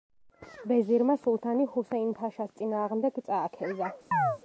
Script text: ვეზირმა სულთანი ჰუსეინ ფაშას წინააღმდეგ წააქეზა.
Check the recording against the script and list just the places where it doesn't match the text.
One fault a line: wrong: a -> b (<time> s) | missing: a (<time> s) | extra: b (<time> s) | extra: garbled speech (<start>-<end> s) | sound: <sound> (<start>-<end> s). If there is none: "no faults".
sound: chirp (4.1-4.4 s)